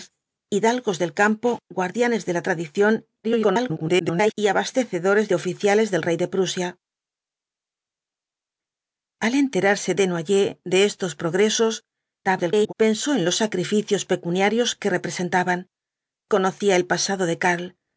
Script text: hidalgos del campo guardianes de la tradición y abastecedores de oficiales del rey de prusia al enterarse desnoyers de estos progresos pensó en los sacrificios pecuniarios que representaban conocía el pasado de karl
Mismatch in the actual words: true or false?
true